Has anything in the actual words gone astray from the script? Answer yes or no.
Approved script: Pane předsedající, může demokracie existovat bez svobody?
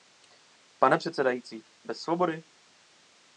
yes